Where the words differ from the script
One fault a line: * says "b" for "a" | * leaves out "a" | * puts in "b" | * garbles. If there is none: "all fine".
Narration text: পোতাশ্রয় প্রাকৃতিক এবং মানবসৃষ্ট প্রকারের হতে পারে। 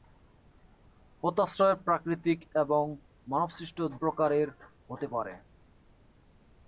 all fine